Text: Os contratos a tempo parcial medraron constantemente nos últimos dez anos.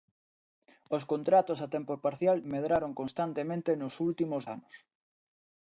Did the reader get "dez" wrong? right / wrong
wrong